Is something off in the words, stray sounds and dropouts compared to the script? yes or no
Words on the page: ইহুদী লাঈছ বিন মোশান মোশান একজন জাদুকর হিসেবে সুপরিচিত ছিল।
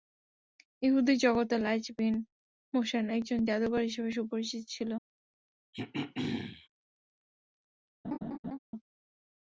yes